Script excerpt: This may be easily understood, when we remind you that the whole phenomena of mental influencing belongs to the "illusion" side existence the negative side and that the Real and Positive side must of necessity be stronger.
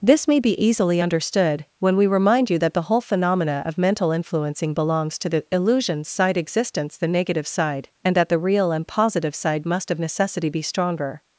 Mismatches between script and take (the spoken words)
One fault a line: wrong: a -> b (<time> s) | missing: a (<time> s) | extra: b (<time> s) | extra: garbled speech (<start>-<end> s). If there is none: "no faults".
no faults